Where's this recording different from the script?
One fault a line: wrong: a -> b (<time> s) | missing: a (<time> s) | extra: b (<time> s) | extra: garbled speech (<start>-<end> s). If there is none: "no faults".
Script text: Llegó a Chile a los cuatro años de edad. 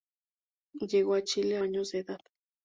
missing: los cuatro (1.6 s)